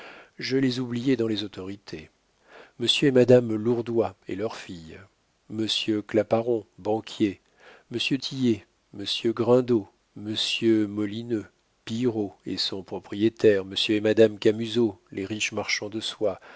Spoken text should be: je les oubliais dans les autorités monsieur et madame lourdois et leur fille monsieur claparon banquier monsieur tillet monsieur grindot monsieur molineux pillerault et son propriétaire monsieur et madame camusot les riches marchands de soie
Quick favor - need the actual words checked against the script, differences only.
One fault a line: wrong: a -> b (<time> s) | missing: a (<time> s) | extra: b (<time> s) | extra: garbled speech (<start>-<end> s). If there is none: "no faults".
no faults